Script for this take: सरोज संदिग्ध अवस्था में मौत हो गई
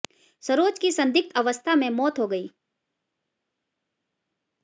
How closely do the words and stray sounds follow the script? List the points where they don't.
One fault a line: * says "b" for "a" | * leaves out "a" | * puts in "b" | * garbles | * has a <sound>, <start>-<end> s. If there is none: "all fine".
* puts in "की"